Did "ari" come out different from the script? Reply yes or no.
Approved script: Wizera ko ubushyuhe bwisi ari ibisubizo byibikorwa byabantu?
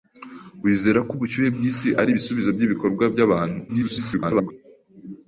no